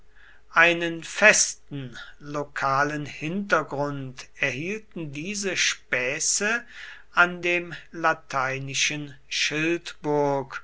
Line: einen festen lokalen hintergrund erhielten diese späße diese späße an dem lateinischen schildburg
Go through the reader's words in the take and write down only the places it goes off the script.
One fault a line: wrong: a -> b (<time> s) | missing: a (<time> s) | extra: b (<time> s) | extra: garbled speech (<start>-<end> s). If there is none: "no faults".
missing: diese späße (6.6 s)